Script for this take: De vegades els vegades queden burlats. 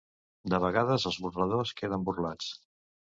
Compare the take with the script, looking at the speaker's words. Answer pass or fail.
fail